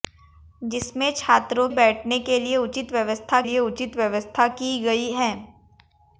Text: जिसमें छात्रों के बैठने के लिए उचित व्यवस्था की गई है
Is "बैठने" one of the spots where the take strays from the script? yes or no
yes